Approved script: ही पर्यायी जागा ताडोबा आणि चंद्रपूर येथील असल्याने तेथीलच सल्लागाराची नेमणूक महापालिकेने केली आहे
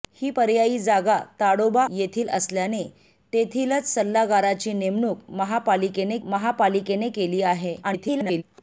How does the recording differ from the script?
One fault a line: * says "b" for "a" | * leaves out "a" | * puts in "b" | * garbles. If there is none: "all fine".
* leaves out "आणि चंद्रपूर"
* puts in "महापालिकेने"
* garbles